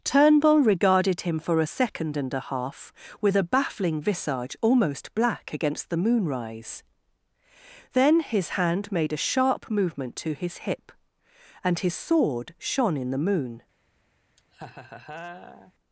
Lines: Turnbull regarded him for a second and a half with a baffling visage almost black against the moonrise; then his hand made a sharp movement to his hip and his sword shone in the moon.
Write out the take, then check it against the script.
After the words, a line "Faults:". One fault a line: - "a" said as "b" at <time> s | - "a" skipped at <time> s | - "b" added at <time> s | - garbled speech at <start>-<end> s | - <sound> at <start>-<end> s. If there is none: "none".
Turnbull regarded him for a second and a half with a baffling visage almost black against the moonrise; then his hand made a sharp movement to his hip and his sword shone in the moon.
Faults:
- laugh at 14.4-15.7 s